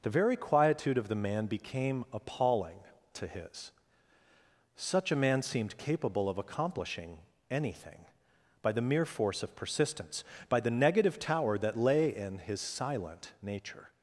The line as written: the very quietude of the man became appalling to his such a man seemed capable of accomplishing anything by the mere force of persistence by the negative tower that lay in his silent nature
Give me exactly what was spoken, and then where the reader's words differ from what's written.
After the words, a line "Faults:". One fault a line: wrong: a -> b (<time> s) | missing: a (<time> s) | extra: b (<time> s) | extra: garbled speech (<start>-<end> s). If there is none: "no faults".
the very quietude of the man became appalling to his such a man seemed capable of accomplishing anything by the mere force of persistence by the negative tower that lay in his silent nature
Faults:
no faults